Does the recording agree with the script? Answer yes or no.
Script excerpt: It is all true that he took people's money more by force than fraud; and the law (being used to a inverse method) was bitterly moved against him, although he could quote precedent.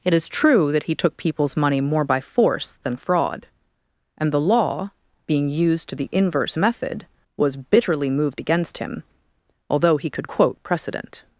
no